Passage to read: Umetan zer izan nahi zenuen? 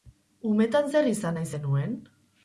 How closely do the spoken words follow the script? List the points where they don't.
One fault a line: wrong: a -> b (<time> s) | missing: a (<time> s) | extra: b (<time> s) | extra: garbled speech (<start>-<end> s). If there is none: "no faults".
no faults